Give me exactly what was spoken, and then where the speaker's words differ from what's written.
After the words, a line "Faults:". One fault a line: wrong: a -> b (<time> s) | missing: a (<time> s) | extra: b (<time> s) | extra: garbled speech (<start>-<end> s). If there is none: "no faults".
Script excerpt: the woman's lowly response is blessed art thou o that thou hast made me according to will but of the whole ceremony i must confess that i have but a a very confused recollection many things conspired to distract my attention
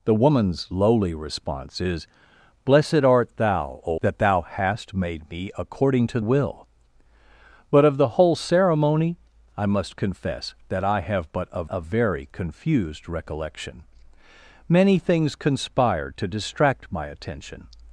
the woman's lowly response is blessed art thou o that thou hast made me according to will but of the whole ceremony i must confess that i have but a a very confused recollection many things conspired to distract my attention
Faults:
no faults